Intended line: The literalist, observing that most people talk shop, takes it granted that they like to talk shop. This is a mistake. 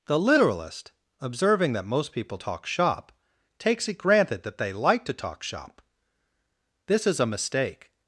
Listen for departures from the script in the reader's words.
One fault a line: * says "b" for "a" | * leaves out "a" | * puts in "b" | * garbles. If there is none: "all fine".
all fine